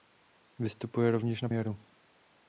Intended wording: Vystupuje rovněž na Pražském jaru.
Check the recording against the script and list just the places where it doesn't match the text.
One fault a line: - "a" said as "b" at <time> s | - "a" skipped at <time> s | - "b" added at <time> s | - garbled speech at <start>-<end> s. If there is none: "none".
- "Pražském" skipped at 1.5 s